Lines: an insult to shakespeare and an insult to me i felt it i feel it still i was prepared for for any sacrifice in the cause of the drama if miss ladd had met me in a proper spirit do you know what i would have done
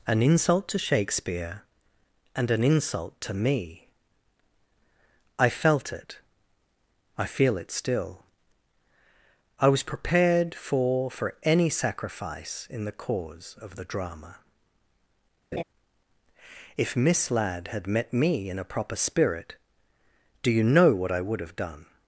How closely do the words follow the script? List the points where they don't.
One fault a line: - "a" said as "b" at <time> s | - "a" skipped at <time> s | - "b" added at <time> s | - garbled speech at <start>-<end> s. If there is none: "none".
none